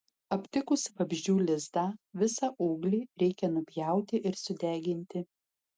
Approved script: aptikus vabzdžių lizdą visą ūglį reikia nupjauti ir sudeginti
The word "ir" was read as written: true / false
true